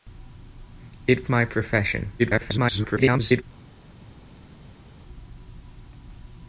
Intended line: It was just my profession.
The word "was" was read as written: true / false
false